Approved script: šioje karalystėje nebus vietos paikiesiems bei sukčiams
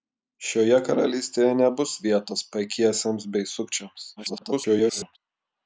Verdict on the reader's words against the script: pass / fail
fail